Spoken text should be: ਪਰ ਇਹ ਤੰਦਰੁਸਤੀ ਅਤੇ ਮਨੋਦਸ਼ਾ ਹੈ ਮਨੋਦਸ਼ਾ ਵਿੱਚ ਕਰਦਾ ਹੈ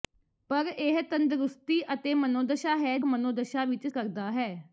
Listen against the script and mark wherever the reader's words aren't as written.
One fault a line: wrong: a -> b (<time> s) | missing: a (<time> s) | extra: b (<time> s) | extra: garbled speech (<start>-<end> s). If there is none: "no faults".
no faults